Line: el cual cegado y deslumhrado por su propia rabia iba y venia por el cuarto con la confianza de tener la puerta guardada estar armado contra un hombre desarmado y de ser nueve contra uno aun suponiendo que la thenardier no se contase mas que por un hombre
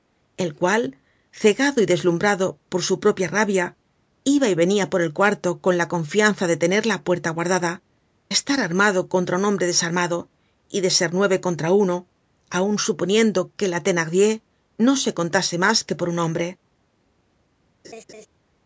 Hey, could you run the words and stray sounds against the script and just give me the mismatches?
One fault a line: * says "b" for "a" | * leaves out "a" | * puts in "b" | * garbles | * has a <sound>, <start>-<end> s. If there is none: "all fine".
* has a laugh, 17.8-18.3 s